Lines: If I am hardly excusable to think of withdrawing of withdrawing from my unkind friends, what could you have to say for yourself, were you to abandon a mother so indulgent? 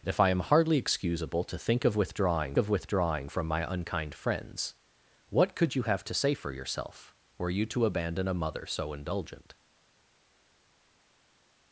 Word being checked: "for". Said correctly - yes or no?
yes